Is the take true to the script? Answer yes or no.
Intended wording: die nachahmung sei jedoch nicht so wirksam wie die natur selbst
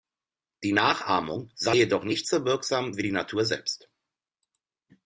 yes